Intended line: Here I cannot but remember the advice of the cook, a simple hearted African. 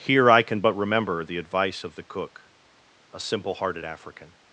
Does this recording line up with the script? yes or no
no